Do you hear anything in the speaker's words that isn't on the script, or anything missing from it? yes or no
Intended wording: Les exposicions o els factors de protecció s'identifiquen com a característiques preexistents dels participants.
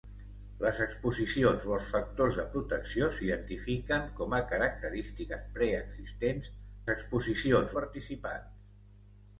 yes